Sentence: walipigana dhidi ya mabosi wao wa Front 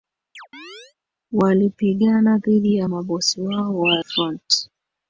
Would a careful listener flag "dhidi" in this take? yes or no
no